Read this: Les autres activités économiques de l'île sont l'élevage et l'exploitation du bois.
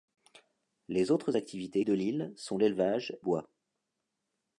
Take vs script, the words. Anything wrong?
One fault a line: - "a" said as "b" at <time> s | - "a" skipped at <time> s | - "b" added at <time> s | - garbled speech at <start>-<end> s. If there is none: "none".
- "économiques" skipped at 1.8 s
- "et l'exploitation du" skipped at 3.2 s